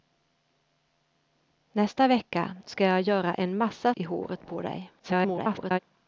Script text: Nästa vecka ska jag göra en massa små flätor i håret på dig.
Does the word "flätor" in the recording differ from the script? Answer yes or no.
yes